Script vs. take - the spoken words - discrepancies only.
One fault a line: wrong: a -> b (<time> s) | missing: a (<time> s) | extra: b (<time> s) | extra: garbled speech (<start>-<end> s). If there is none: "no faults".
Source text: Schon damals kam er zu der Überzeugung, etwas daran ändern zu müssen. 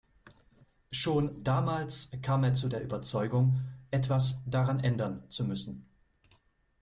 no faults